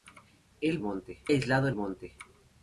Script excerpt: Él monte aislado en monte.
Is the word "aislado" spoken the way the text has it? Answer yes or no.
yes